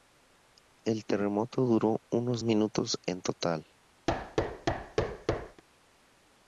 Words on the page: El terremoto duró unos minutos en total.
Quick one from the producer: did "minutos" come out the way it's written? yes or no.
yes